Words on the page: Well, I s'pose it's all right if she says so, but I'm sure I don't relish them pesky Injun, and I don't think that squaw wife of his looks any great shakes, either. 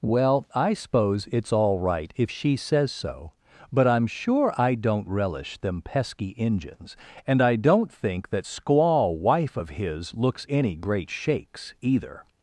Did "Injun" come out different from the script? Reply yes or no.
yes